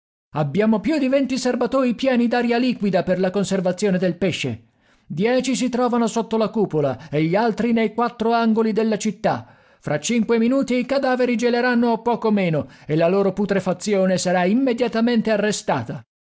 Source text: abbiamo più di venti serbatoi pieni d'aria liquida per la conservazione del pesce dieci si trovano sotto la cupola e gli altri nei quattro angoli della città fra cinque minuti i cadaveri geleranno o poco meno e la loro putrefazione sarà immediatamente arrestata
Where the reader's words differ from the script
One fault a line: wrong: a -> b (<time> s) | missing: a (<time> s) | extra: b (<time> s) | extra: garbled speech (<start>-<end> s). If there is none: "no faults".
no faults